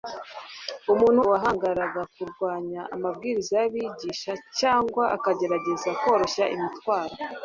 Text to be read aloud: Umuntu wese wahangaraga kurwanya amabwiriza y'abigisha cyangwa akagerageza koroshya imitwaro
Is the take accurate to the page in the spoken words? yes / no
no